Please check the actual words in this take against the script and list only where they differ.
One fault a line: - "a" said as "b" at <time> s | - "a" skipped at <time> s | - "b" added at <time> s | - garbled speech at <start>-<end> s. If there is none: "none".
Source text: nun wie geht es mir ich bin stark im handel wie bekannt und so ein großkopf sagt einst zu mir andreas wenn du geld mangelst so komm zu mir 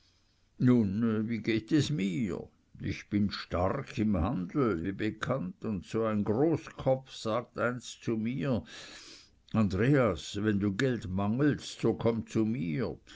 none